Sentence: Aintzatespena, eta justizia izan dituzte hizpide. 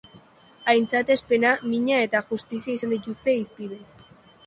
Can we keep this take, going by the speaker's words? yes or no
no